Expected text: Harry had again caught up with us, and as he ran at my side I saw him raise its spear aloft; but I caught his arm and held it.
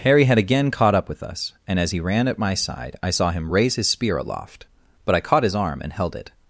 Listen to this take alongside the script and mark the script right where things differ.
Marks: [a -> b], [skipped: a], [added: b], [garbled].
Harry had again caught up with us, and as he ran at my side I saw him raise [its -> his] spear aloft; but I caught his arm and held it.